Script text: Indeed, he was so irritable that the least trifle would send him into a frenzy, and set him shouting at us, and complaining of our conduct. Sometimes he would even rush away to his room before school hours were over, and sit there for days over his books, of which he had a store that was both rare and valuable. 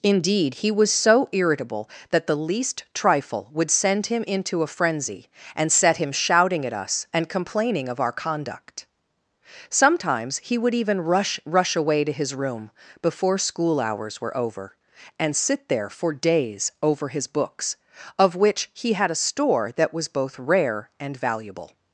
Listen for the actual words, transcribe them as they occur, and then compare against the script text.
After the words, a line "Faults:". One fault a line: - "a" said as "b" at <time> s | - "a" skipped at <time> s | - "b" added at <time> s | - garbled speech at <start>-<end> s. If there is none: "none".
Indeed, he was so irritable that the least trifle would send him into a frenzy, and set him shouting at us, and complaining of our conduct. Sometimes he would even rush rush away to his room before school hours were over, and sit there for days over his books, of which he had a store that was both rare and valuable.
Faults:
- "rush" added at 11.4 s